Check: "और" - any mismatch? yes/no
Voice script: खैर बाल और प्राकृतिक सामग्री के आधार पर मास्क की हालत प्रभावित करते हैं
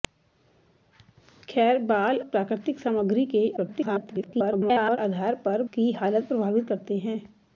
yes